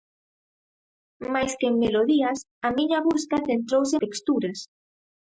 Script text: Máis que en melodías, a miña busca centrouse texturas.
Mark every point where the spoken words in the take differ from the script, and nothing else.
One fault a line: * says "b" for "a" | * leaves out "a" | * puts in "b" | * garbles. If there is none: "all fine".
all fine